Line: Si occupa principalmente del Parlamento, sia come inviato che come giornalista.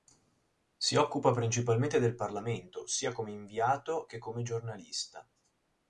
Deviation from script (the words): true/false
false